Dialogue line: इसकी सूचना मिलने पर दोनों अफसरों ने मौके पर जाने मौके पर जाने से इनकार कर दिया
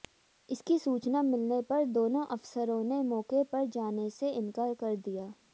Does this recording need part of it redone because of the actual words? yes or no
yes